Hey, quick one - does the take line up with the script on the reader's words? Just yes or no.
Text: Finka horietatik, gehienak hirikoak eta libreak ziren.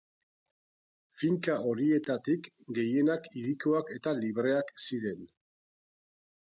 yes